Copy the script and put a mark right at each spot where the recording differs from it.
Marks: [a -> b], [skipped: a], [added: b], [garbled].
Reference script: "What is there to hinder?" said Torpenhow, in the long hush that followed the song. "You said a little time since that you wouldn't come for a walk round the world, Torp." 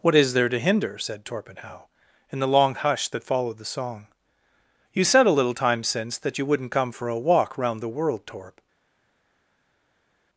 "What is there to hinder?" said Torpenhow, in the long hush that followed the song. "You said a little time since that you wouldn't come for a walk round the world, Torp."